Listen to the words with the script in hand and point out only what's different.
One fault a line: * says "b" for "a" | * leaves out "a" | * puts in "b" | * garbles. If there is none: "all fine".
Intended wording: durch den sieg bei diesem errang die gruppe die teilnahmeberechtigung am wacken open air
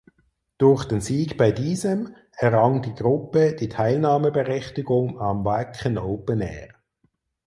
all fine